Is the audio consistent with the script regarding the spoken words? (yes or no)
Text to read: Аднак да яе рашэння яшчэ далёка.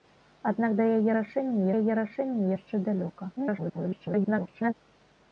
no